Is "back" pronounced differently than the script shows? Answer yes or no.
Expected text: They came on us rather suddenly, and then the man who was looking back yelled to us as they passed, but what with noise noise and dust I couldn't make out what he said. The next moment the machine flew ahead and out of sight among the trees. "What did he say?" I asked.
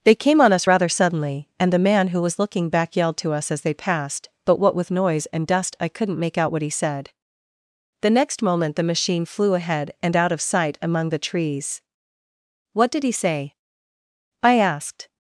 no